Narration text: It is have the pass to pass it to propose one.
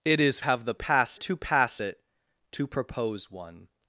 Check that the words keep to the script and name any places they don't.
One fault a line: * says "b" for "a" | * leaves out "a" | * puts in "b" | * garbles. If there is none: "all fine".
all fine